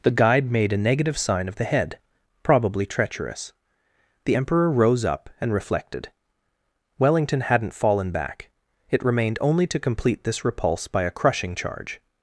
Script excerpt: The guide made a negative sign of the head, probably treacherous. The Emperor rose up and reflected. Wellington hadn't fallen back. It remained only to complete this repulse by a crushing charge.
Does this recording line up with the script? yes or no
yes